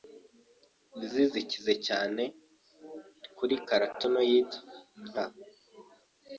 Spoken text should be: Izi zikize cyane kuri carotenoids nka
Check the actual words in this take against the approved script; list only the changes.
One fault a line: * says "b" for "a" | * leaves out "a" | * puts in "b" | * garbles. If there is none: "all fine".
all fine